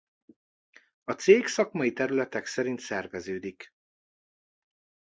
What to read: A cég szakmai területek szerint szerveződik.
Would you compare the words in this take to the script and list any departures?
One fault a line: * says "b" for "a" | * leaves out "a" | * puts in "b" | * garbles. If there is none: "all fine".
all fine